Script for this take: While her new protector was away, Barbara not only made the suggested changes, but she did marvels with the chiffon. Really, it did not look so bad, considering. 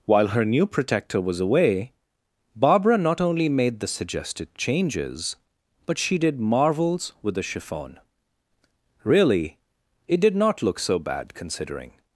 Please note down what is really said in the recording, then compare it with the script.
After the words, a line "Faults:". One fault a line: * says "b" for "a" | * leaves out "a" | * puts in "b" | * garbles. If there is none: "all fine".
While her new protector was away, Barbara not only made the suggested changes, but she did marvels with the chiffon. Really, it did not look so bad, considering.
Faults:
all fine